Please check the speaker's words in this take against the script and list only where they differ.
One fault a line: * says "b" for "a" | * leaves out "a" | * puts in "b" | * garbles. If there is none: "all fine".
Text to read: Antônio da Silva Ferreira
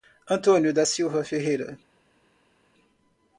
all fine